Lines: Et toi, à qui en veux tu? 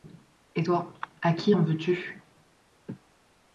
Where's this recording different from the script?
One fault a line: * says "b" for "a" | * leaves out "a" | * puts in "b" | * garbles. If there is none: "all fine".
all fine